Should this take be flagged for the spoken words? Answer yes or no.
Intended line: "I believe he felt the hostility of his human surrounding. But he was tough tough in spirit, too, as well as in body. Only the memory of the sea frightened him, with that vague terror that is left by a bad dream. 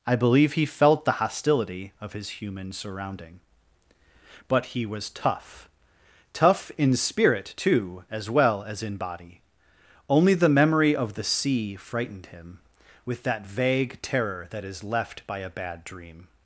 no